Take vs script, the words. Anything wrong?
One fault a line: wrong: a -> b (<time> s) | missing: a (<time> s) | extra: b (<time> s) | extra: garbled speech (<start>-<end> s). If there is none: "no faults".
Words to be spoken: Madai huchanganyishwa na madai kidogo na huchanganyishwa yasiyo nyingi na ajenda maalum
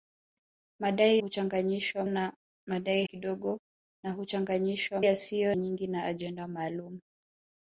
no faults